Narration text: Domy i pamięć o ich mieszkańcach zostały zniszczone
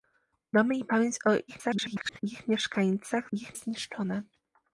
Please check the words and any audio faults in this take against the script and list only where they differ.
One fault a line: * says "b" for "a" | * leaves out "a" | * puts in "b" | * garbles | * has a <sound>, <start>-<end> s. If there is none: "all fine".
* garbles
* says "ich" for "zostały"